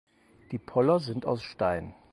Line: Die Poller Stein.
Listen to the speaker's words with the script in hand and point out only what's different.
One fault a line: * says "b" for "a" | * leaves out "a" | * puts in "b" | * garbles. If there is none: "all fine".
* puts in "sind aus"